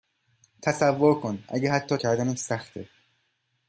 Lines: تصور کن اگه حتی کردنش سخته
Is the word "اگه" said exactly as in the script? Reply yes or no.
yes